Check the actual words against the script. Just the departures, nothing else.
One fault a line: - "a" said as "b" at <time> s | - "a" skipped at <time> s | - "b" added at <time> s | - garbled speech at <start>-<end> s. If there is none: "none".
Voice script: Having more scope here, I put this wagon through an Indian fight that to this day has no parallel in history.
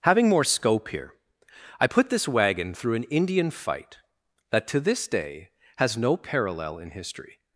none